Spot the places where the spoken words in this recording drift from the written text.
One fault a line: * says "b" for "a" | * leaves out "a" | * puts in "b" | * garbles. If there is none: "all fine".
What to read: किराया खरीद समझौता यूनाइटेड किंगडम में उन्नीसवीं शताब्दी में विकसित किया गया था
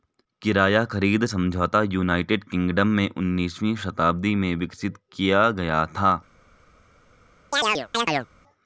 all fine